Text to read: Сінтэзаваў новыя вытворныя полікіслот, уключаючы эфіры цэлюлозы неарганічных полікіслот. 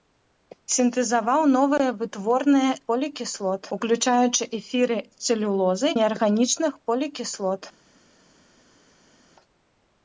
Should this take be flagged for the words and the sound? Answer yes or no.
no